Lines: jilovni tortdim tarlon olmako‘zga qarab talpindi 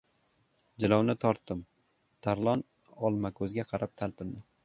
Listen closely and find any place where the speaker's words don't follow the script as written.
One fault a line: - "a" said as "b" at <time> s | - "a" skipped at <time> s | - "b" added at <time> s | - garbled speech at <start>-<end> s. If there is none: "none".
none